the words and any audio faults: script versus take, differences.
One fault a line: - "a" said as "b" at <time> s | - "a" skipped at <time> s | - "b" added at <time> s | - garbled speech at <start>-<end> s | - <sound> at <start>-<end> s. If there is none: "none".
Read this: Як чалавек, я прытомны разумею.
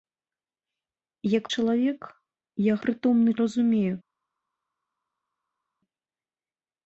none